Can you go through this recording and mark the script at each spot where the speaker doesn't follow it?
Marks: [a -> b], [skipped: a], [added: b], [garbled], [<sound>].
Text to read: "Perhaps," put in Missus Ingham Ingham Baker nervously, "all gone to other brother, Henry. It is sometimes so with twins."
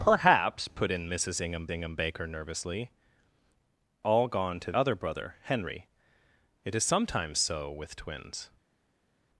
"Perhaps," put in Missus Ingham Ingham Baker nervously, "all gone to other brother, Henry. It is sometimes so with twins."